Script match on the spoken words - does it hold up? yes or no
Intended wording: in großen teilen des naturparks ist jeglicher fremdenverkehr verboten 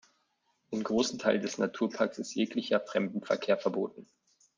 yes